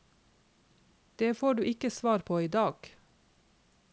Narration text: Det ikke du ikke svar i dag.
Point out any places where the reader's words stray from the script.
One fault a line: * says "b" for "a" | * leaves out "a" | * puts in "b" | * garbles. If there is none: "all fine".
* says "får" for "ikke"
* puts in "på"